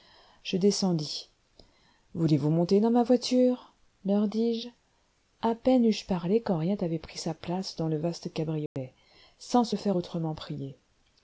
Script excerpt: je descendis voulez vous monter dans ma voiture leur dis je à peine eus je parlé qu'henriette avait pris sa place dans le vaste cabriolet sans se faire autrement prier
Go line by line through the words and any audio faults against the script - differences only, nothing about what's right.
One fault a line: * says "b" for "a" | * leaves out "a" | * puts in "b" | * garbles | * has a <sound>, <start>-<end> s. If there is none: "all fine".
* has a dropout, 8.7-8.8 s